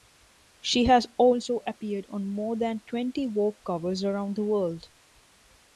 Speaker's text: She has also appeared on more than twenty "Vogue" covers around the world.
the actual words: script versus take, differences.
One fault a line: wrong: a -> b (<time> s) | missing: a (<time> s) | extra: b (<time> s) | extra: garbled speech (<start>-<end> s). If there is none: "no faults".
no faults